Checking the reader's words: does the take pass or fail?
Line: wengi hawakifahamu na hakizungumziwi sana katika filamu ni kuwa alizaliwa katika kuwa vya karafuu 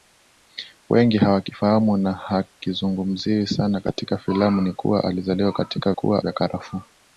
pass